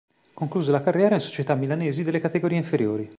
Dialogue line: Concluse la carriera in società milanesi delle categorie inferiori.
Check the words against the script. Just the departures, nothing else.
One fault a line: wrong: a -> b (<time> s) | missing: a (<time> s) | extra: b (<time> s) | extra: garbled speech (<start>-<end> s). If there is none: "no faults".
no faults